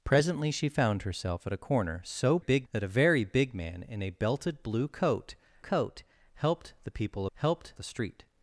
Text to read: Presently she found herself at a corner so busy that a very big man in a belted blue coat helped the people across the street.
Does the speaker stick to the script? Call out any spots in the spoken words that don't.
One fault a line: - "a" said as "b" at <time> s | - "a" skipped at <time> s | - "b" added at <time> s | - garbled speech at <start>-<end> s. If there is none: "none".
- "busy" said as "big" at 2.4 s
- "coat" added at 5.6 s
- "across" said as "helped" at 7.4 s